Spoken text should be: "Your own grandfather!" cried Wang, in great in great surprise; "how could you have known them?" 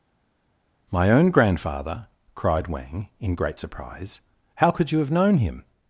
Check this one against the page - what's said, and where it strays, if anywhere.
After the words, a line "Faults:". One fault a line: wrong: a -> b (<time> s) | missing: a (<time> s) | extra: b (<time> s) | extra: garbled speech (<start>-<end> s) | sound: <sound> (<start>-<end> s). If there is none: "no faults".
"My own grandfather!" cried Wang, in great surprise; "how could you have known him?"
Faults:
wrong: Your -> My (0.9 s)
missing: in great (3.6 s)
wrong: them -> him (5.4 s)